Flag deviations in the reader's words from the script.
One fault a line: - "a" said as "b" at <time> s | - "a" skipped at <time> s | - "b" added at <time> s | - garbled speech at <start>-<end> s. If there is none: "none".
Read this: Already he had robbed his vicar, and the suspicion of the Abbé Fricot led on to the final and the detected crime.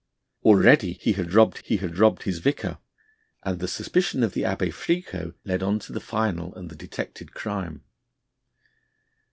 - "he had robbed" added at 1.6 s